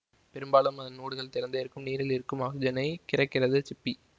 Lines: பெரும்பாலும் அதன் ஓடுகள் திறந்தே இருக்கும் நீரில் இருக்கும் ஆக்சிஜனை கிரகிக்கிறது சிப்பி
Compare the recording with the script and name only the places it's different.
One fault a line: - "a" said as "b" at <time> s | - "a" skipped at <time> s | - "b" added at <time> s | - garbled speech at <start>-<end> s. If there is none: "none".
none